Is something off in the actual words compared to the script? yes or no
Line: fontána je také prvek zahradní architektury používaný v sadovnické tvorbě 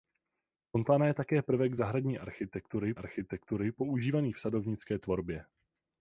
yes